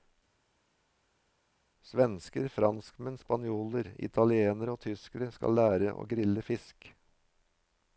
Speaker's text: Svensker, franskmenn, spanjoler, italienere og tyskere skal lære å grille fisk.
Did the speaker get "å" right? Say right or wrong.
right